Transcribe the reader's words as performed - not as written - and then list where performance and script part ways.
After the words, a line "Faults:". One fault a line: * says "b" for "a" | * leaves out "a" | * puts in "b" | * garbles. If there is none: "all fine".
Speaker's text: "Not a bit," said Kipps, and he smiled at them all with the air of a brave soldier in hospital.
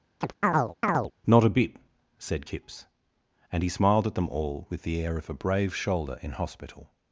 "Not a bit," said Kipps, and he smiled at them all with the air of a brave shoulder in hospital.
Faults:
* says "shoulder" for "soldier"